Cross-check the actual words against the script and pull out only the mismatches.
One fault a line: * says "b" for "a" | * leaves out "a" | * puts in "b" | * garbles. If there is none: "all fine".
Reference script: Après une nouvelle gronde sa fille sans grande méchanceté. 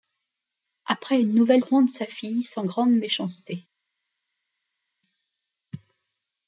all fine